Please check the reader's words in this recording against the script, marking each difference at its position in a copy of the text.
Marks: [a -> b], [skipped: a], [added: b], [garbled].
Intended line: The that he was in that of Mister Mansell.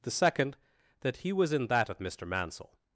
The [added: second] that he was in that of Mister Mansell.